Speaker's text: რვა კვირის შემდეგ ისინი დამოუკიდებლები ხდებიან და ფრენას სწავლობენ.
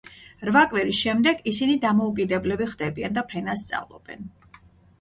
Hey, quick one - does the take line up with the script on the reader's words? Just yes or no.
yes